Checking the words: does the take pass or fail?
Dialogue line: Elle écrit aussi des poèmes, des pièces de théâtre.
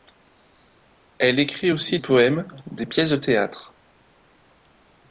fail